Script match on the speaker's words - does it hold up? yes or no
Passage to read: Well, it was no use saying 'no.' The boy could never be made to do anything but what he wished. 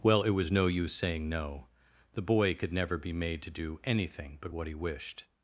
yes